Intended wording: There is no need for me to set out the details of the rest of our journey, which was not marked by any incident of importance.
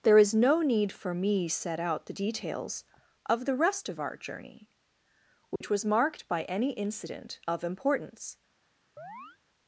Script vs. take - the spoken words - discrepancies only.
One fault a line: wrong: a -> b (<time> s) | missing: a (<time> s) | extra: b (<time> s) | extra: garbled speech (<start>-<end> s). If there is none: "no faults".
missing: to (1.5 s)
missing: not (5.8 s)